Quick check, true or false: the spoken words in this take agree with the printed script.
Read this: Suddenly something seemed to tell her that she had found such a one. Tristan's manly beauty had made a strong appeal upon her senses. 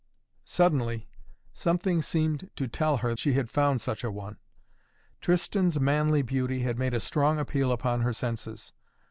false